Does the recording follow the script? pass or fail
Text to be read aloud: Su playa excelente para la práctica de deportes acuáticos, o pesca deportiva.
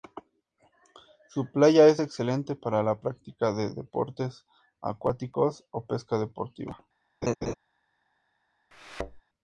fail